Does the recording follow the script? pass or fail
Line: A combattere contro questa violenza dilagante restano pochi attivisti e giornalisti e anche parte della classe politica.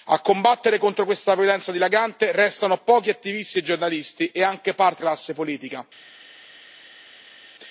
fail